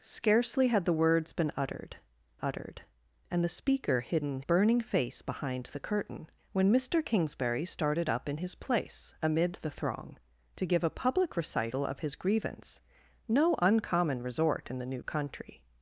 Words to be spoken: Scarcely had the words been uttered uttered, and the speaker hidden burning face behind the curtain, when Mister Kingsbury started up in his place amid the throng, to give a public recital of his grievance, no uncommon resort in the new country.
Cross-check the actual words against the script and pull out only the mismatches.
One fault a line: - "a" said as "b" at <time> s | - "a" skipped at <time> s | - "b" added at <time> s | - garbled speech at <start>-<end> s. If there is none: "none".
none